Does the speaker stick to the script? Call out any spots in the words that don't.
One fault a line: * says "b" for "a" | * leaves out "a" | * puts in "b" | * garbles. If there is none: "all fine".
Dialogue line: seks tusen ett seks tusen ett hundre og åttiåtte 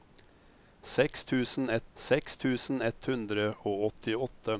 all fine